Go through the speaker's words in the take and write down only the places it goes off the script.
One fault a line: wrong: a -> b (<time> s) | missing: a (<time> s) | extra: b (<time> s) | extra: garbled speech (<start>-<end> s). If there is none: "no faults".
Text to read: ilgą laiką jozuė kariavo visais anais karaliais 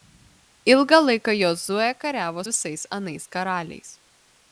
no faults